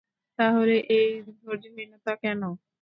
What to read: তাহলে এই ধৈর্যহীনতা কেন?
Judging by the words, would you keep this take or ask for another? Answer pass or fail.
pass